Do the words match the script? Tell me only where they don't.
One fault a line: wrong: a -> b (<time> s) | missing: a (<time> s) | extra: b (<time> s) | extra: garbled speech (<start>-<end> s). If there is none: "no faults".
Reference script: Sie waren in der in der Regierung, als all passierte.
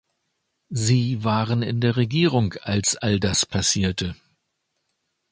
missing: in der (1.9 s)
extra: das (3.2 s)